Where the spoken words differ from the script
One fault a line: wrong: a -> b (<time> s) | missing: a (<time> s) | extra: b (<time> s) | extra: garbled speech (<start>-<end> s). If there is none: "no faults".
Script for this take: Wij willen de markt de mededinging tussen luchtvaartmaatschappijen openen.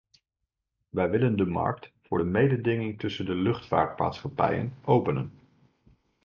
extra: voor (2.0 s)
extra: de (3.2 s)